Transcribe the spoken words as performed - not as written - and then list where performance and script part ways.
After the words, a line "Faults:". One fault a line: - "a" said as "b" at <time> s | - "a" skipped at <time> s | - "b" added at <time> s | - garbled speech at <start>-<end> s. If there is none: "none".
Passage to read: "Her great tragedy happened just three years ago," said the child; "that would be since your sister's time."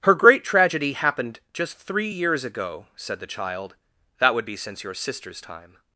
"Her great tragedy happened just three years ago," said the child; "that would be since your sister's time."
Faults:
none